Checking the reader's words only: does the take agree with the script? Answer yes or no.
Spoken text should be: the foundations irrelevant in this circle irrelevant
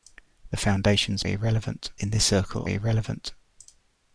yes